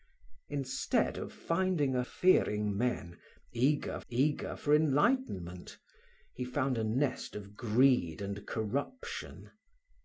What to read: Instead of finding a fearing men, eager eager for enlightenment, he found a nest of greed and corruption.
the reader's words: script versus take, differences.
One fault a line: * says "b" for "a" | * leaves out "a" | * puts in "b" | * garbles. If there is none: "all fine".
all fine